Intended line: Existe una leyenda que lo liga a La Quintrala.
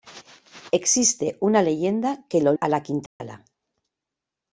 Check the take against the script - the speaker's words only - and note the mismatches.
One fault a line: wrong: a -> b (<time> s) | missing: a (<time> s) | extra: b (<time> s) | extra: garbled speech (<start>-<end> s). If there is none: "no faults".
missing: liga (2.5 s)